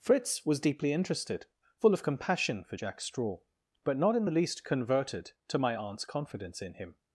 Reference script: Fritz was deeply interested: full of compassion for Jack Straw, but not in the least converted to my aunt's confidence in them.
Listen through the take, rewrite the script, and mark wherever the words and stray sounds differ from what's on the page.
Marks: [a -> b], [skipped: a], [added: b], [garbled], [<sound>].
Fritz was deeply interested: full of compassion for Jack Straw, but not in the least converted to my aunt's confidence in [them. -> him]